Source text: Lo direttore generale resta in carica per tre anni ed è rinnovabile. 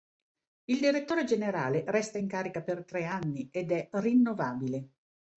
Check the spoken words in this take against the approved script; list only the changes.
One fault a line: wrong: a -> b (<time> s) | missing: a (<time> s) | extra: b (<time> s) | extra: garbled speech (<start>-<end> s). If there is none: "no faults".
wrong: Lo -> Il (0.7 s)